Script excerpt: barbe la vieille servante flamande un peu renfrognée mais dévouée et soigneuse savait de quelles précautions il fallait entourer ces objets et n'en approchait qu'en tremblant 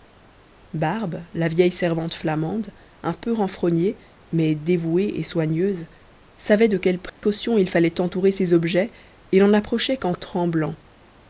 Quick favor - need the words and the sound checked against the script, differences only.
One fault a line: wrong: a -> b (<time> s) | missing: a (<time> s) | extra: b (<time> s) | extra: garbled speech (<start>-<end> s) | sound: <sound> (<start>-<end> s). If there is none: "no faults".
sound: dropout (7.1-7.2 s)